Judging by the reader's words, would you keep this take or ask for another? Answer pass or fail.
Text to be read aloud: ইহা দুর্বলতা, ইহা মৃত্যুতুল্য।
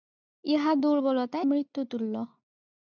fail